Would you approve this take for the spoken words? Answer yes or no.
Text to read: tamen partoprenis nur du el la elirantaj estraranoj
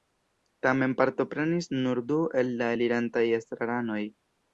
yes